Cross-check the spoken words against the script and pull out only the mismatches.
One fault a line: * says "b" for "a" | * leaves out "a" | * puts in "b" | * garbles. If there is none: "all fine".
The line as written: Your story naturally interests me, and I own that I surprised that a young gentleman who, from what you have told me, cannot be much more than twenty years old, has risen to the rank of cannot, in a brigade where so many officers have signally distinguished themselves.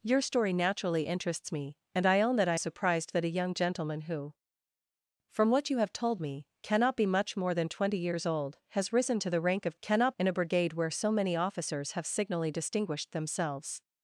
all fine